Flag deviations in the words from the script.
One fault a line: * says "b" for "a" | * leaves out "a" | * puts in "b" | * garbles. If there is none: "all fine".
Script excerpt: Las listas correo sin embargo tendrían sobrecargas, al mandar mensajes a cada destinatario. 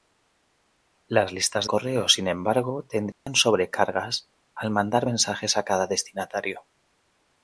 all fine